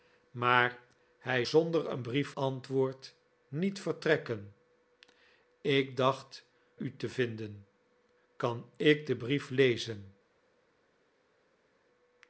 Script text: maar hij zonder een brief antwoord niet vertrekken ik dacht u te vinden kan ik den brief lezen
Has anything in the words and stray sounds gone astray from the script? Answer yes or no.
no